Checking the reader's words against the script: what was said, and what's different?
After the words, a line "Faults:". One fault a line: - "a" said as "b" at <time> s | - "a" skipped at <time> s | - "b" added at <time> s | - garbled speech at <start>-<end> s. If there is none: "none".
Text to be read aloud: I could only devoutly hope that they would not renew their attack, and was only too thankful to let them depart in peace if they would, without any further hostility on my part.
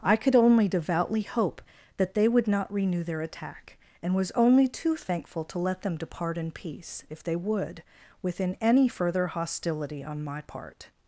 I could only devoutly hope that they would not renew their attack, and was only too thankful to let them depart in peace if they would, within any further hostility on my part.
Faults:
- "without" said as "within" at 8.2 s